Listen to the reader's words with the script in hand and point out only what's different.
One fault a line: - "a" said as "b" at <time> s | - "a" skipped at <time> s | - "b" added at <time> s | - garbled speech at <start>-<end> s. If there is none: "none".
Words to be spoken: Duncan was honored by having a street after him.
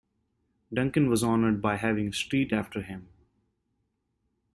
none